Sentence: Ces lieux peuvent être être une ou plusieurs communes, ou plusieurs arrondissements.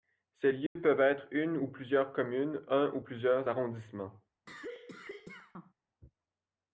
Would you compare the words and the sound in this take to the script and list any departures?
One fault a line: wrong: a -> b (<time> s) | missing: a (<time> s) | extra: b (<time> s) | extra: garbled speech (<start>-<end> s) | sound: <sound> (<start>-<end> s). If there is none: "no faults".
sound: dropout (0.7-0.8 s)
missing: être (1.3 s)
extra: un (2.7 s)
sound: cough (4.5-5.7 s)